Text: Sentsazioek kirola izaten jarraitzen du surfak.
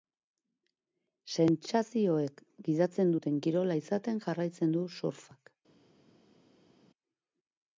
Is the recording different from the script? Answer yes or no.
yes